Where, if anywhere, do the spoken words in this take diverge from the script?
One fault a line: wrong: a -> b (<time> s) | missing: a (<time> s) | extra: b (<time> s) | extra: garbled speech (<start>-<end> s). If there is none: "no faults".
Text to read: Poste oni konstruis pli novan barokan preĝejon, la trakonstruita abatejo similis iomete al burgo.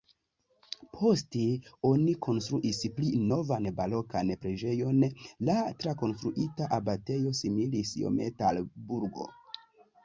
no faults